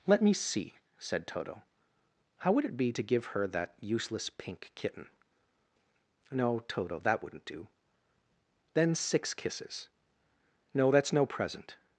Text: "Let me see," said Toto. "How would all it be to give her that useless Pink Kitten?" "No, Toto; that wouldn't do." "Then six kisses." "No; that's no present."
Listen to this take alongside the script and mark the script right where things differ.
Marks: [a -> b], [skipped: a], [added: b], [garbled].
"Let me see," said Toto. "How would [skipped: all] it be to give her that useless Pink Kitten?" "No, Toto; that wouldn't do." "Then six kisses." "No; that's no present."